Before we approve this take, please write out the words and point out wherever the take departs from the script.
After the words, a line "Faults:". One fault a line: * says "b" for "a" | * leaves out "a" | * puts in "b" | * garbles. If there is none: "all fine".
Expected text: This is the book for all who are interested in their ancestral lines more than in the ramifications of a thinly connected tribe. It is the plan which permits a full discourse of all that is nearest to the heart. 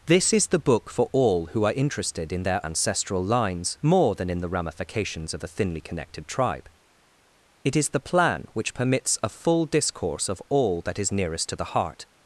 This is the book for all who are interested in their ancestral lines more than in the ramifications of a thinly connected tribe. It is the plan which permits a full discourse of all that is nearest to the heart.
Faults:
all fine